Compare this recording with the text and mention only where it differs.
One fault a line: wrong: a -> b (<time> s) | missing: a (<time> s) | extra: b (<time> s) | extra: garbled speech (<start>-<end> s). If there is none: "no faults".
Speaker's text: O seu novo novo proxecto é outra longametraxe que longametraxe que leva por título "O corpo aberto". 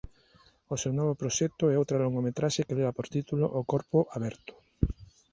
missing: novo (1.2 s)
missing: longametraxe que (2.8 s)